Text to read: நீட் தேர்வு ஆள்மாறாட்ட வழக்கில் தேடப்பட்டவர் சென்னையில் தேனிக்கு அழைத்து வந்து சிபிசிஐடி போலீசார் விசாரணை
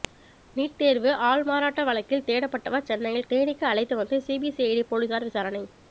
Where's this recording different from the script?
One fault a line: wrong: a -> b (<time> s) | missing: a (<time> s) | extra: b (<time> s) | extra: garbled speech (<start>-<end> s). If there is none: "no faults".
no faults